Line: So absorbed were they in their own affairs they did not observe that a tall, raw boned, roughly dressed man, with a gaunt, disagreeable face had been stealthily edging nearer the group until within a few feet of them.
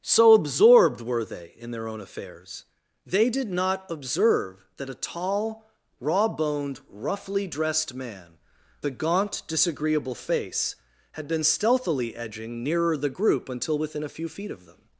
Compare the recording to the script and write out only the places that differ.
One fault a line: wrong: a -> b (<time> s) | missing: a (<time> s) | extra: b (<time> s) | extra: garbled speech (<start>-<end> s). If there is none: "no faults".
missing: with (8.4 s)